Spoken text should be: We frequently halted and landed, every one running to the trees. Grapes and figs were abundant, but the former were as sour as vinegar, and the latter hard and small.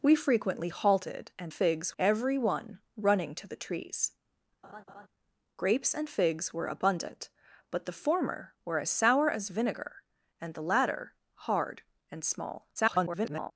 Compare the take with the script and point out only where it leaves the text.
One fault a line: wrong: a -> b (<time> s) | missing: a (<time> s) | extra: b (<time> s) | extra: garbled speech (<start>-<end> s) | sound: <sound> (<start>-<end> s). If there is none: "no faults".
wrong: landed -> figs (1.5 s)
sound: laugh (4.6-5.1 s)
extra: garbled speech (12.8-13.5 s)